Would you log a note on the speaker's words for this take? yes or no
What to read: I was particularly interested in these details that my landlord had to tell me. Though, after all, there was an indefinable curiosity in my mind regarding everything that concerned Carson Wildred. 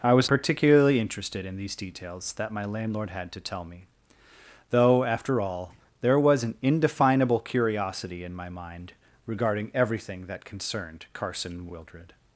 no